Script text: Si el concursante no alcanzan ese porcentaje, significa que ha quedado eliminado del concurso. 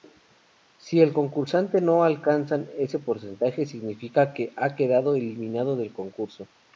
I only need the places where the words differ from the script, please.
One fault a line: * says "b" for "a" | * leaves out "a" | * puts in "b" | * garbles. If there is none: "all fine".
all fine